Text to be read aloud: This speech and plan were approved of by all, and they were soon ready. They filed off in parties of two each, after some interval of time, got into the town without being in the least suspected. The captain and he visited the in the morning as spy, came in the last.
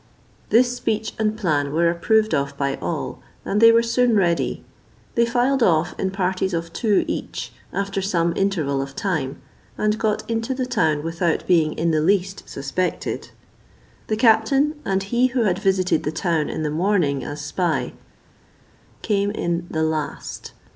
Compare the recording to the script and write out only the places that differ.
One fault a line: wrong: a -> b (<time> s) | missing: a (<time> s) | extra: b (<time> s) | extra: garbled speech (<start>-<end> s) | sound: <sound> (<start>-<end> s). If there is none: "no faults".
extra: and (9.8 s)
extra: who had (15.3 s)
extra: town (16.1 s)